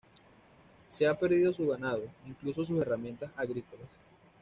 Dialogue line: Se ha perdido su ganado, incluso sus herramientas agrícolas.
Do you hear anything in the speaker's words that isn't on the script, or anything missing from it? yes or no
no